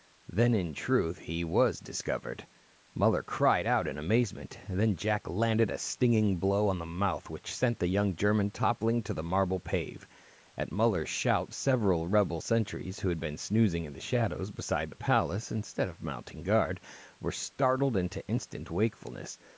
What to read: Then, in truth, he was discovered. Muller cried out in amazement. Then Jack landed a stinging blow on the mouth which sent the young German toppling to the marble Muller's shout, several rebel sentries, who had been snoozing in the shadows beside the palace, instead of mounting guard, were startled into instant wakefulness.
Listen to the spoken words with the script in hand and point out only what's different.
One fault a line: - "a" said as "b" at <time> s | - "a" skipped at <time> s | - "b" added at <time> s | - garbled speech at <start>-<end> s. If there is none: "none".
- "pave At" added at 9.6 s